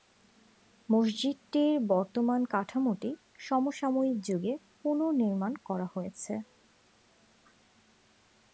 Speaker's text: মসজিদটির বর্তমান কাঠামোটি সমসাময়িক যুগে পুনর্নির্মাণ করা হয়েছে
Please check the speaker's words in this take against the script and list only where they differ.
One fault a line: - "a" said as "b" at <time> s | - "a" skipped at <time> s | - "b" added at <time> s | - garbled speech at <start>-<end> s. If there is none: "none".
none